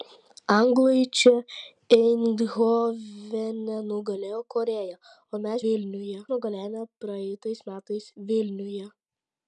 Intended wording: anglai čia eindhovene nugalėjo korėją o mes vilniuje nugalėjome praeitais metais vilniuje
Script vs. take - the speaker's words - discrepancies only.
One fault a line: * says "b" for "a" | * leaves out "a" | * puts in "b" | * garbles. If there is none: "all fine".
all fine